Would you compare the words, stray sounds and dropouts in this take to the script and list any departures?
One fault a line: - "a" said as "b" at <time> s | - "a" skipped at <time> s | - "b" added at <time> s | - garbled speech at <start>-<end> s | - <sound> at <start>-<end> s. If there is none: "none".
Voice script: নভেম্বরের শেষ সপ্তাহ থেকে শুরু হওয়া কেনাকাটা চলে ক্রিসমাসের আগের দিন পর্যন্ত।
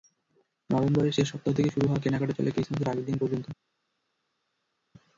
none